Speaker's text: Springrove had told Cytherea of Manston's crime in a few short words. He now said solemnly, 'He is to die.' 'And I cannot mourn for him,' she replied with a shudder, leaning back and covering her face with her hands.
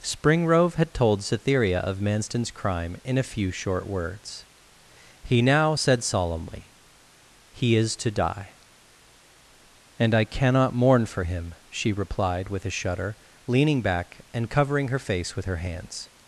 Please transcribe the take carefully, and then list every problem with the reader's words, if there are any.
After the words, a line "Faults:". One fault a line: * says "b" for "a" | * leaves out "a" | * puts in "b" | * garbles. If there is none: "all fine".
Springrove had told Cytherea of Manston's crime in a few short words. He now said solemnly, 'He is to die.' 'And I cannot mourn for him,' she replied with a shudder, leaning back and covering her face with her hands.
Faults:
all fine